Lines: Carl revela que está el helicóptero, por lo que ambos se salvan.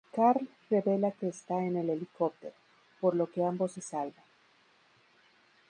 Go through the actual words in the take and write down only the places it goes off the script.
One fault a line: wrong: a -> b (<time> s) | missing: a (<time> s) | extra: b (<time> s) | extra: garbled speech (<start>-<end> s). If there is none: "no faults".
extra: en (1.6 s)